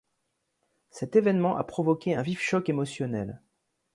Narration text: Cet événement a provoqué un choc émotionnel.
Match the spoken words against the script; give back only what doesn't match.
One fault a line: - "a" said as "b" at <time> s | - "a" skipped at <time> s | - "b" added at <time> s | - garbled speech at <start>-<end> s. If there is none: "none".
- "vif" added at 2.2 s